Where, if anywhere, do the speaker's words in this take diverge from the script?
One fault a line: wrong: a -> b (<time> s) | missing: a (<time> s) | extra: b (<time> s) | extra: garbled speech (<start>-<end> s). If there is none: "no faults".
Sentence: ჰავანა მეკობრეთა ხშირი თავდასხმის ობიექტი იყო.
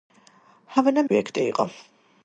missing: მეკობრეთა ხშირი თავდასხმის (1.0 s)